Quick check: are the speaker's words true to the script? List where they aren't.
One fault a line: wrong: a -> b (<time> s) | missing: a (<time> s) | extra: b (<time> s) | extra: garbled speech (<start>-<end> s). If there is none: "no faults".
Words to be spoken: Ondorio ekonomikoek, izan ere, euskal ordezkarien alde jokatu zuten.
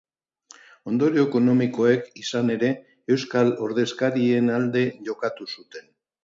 no faults